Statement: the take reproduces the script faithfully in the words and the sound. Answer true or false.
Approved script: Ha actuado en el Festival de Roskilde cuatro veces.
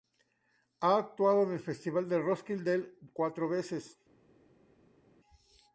true